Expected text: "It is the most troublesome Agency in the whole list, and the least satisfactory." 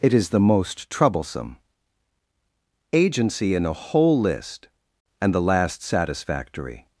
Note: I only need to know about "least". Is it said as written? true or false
false